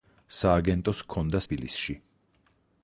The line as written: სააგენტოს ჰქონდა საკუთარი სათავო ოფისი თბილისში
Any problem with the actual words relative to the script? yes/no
yes